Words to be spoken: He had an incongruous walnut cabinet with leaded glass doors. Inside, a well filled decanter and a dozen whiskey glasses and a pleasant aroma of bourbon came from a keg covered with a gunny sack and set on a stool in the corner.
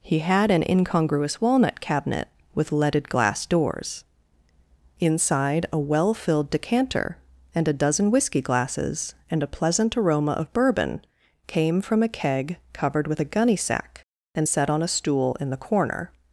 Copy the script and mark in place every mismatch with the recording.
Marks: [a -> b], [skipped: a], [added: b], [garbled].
He had an incongruous walnut cabinet with leaded glass doors. Inside, a well filled decanter and a dozen whiskey glasses and a pleasant aroma of bourbon came from a keg covered with a gunny sack and set on a stool in the corner.